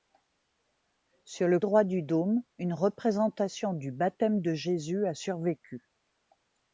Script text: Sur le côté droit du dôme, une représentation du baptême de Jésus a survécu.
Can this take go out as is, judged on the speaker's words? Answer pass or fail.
fail